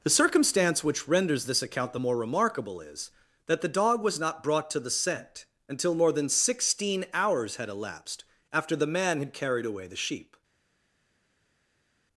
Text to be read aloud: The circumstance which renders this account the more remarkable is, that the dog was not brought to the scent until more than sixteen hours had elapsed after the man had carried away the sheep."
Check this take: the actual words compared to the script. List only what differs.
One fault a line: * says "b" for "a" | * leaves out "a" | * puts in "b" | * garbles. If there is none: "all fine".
all fine